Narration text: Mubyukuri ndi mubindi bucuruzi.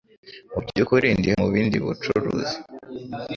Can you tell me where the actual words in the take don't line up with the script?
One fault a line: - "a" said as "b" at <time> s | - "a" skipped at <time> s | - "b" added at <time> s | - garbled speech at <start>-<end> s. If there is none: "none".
none